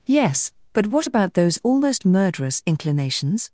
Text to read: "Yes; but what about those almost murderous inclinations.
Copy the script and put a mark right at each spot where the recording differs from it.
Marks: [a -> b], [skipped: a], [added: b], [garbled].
"Yes; but what about those almost murderous inclinations.